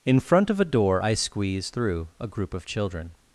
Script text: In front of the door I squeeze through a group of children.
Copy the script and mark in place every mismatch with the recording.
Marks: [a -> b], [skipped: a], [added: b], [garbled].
In front of [the -> a] door I squeeze through a group of children.